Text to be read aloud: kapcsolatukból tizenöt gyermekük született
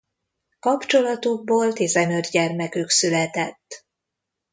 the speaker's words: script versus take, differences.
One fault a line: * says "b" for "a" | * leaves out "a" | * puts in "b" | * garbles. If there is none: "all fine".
all fine